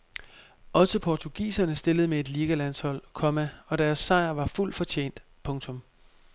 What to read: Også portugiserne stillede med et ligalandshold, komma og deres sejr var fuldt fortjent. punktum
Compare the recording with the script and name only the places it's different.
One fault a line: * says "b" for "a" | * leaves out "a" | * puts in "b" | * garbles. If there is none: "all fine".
all fine